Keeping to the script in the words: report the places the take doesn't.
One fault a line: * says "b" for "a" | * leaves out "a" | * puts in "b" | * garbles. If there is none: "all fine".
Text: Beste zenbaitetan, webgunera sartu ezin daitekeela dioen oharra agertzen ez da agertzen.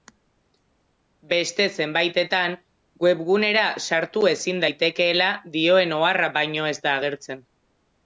* says "baino" for "agertzen"